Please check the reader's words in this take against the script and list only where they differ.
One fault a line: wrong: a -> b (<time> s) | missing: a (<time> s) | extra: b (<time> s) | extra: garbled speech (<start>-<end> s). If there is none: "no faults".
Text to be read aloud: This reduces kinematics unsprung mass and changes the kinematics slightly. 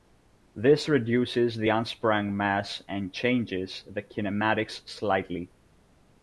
wrong: kinematics -> the (1.6 s)